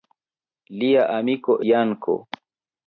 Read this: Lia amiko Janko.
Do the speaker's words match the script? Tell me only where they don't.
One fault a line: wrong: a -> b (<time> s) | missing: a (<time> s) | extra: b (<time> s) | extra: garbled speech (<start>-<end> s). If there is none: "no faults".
no faults